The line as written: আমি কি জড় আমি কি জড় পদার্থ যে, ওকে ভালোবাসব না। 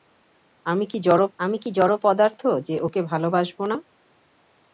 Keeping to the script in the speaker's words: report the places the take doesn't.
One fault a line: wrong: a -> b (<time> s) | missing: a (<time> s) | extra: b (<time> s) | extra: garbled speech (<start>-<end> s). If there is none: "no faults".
no faults